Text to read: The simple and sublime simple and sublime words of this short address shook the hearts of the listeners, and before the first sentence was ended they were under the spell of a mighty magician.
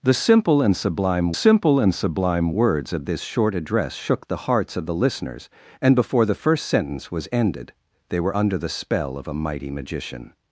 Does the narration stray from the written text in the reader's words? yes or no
no